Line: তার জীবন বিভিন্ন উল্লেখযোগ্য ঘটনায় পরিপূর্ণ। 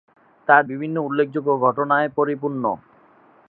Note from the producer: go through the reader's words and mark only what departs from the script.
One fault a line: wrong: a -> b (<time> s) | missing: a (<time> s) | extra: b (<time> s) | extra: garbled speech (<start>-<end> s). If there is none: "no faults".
missing: জীবন (0.6 s)